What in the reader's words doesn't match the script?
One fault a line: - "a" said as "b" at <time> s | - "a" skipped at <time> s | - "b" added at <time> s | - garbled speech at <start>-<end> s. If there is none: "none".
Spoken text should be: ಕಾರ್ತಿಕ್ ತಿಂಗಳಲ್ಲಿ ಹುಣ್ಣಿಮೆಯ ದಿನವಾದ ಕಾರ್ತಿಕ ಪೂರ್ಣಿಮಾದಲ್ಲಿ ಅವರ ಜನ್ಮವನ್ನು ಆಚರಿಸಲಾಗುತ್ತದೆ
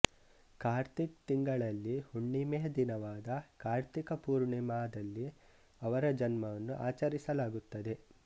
none